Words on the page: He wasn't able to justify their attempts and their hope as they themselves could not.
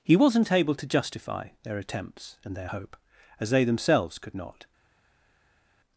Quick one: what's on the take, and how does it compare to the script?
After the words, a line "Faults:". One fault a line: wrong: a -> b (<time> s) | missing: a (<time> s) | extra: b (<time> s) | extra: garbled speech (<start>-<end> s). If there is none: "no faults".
He wasn't able to justify their attempts and their hope as they themselves could not.
Faults:
no faults